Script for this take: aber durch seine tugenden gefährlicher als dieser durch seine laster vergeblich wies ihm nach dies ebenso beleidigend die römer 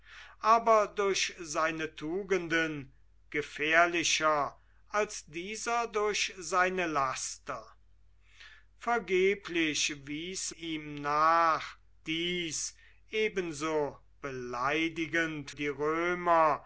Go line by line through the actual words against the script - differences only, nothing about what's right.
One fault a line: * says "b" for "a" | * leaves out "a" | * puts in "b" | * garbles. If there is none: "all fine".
all fine